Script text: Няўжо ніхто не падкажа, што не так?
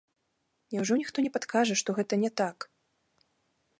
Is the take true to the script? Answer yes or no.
no